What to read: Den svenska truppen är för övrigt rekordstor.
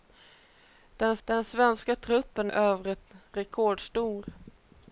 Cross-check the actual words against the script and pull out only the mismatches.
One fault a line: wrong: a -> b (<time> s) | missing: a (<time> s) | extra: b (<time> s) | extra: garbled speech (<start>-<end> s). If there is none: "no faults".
extra: den (1.3 s)
missing: är för (2.5 s)